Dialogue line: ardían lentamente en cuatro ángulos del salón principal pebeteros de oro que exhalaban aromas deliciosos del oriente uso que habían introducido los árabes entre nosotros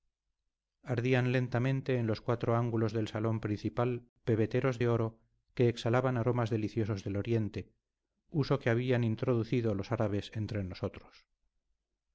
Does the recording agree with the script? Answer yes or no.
no